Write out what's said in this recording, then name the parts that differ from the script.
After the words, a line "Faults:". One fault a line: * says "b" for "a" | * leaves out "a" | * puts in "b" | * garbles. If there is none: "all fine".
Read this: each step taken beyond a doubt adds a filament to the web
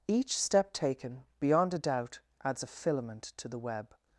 each step taken beyond a doubt adds a filament to the web
Faults:
all fine